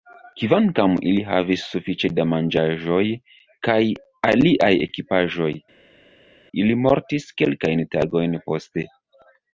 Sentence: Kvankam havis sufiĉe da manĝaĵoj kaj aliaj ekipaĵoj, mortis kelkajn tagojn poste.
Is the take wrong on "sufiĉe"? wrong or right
right